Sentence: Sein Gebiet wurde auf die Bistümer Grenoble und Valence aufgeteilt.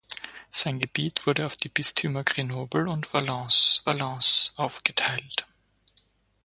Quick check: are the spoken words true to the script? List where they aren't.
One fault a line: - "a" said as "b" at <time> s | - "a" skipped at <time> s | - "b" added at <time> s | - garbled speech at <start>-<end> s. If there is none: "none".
- "Valence" added at 3.9 s